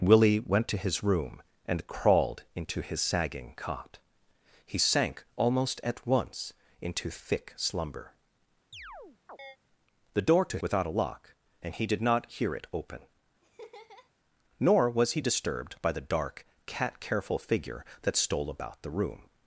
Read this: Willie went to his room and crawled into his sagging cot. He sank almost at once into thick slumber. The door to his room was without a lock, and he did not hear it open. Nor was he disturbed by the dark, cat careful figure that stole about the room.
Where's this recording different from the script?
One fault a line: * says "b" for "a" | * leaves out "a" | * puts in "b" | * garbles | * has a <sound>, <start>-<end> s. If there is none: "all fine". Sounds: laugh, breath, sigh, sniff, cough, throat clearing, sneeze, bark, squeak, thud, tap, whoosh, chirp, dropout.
* has a chirp, 8.7-9.6 s
* leaves out "his room was"
* has a laugh, 13.4-14.1 s